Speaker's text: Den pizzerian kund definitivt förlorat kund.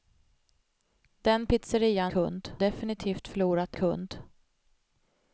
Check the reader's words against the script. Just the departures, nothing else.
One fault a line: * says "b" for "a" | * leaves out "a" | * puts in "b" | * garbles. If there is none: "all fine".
all fine